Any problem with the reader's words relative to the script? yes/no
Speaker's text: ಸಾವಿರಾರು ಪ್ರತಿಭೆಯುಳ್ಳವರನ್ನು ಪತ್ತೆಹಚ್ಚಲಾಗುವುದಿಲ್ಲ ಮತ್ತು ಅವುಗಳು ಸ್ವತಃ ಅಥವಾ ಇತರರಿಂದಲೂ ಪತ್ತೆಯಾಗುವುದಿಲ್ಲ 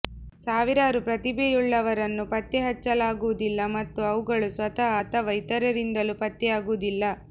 no